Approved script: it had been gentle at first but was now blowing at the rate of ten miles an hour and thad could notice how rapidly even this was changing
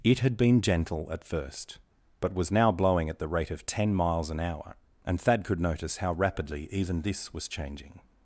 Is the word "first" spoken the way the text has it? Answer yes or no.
yes